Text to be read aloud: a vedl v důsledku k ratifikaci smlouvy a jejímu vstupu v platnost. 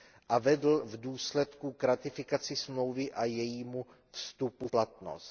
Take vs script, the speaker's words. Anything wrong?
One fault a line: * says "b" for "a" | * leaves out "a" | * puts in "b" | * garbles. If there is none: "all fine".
* leaves out "v"